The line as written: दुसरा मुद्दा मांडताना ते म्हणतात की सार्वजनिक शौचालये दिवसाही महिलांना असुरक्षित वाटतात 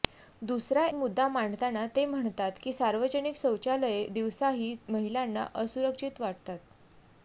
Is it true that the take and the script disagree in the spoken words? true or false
false